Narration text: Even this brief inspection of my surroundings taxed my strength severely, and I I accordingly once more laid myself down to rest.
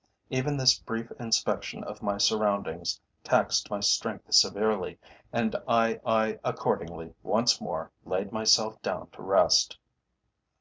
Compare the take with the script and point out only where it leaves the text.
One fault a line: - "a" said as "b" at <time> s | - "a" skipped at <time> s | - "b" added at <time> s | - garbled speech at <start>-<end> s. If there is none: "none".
none